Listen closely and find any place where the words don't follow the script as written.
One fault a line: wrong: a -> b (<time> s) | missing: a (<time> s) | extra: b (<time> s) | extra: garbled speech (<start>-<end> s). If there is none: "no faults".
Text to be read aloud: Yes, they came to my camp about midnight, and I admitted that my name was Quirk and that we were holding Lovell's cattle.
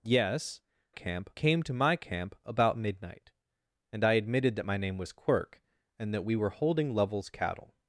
wrong: they -> camp (0.9 s)